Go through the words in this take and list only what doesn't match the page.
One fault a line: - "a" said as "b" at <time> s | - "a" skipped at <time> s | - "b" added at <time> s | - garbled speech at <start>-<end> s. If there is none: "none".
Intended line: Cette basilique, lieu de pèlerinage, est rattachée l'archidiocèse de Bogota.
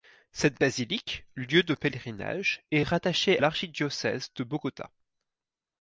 none